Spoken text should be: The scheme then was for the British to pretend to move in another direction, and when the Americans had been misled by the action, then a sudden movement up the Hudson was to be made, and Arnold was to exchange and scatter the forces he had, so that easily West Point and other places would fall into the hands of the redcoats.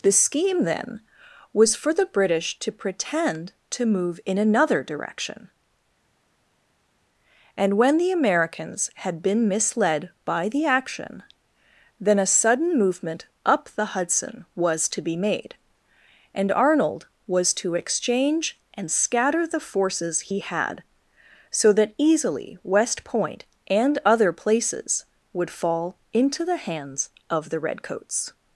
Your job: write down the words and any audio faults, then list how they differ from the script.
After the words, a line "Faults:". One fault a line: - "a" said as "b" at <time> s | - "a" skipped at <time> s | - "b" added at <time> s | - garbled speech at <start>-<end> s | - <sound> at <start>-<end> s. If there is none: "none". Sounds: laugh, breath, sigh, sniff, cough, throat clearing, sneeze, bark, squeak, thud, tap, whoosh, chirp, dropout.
The scheme then was for the British to pretend to move in another direction, and when the Americans had been misled by the action, then a sudden movement up the Hudson was to be made, and Arnold was to exchange and scatter the forces he had, so that easily West Point and other places would fall into the hands of the redcoats.
Faults:
none